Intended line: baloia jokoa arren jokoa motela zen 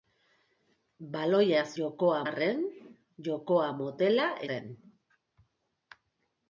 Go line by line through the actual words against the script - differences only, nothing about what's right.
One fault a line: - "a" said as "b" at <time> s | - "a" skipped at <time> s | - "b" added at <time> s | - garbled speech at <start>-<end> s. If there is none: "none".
none